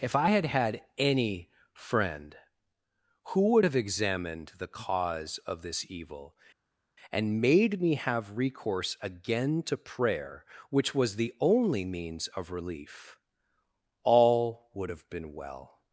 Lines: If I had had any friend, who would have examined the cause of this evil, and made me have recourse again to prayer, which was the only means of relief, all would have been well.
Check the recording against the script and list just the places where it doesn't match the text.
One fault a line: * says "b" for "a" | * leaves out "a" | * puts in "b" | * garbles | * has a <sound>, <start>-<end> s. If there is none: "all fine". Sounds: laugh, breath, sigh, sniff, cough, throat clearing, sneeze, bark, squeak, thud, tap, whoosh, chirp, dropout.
all fine